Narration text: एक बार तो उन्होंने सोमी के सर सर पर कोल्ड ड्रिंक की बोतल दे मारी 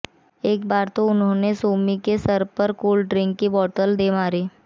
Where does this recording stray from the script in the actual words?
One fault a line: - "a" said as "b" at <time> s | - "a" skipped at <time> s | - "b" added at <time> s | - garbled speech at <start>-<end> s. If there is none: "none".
- "सर" skipped at 2.4 s